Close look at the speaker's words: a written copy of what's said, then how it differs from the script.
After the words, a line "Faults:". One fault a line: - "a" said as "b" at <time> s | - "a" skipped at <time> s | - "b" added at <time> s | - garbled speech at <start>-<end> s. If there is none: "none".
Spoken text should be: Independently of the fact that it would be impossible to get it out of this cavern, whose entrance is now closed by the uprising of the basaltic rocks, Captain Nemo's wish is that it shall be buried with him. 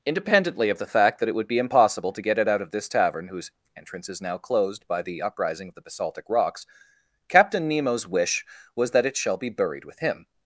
Independently of the fact that it would be impossible to get it out of this tavern, whose entrance is now closed by the uprising of the basaltic rocks, Captain Nemo's wish was that it shall be buried with him.
Faults:
- "cavern" said as "tavern" at 2.9 s
- "is" said as "was" at 8.7 s